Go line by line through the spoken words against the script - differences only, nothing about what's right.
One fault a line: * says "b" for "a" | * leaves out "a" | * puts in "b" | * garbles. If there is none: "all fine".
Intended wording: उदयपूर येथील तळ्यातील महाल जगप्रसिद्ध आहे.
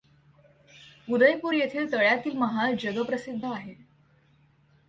all fine